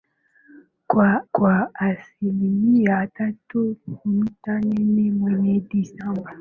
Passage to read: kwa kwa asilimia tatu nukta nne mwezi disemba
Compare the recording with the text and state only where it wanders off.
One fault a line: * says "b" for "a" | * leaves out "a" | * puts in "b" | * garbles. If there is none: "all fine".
all fine